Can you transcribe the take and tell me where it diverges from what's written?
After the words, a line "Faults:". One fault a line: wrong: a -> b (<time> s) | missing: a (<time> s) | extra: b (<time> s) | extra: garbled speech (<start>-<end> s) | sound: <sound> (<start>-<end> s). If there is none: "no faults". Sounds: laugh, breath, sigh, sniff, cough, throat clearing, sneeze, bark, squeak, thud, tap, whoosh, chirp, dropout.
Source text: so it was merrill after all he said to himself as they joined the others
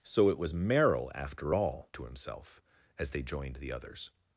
so it was merrill after all to himself as they joined the others
Faults:
missing: he said (1.9 s)